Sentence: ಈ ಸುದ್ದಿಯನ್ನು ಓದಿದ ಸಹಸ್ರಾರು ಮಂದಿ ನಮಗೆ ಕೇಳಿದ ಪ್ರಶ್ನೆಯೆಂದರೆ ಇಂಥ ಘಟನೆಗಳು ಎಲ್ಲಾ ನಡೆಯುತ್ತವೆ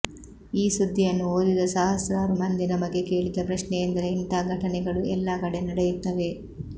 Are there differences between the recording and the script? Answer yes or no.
yes